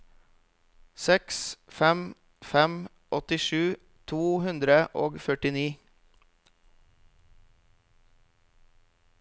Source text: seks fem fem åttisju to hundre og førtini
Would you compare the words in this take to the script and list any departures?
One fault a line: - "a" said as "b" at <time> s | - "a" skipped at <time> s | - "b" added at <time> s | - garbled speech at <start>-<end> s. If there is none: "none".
none